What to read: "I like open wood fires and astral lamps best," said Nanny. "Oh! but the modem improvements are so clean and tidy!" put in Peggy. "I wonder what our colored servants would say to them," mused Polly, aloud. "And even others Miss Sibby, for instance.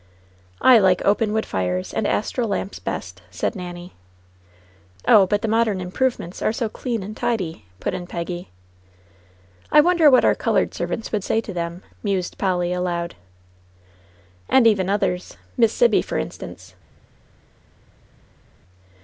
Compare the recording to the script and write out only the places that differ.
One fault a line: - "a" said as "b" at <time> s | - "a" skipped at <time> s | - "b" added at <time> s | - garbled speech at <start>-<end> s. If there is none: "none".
none